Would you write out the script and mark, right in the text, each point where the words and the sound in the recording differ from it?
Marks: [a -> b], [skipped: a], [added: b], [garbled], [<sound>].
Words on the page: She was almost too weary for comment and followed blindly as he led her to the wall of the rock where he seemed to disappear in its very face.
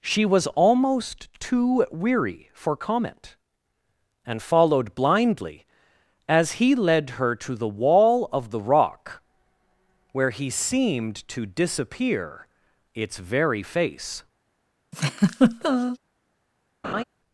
She was almost too weary for comment and followed blindly as he led her to the wall of the rock where he seemed to disappear [skipped: in] its very face. [laugh] [laugh]